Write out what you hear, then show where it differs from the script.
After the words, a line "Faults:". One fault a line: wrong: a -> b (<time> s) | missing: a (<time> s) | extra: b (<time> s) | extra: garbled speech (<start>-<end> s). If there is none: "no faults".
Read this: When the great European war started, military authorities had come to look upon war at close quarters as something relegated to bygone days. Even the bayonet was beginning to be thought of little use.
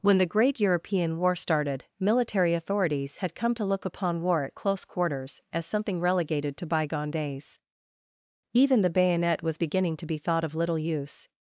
When the great European war started, military authorities had come to look upon war at close quarters as something relegated to bygone days. Even the bayonet was beginning to be thought of little use.
Faults:
no faults